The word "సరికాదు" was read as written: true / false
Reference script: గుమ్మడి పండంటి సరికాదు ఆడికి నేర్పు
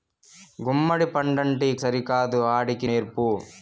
true